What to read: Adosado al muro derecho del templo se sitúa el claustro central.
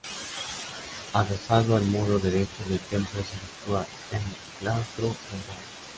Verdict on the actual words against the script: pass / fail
pass